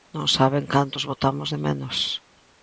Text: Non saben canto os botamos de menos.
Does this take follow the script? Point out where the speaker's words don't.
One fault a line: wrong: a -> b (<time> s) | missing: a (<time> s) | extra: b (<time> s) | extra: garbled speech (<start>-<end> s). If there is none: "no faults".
no faults